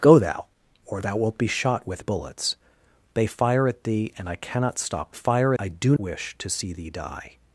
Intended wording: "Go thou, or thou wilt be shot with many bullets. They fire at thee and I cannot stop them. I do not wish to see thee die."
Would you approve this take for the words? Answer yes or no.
no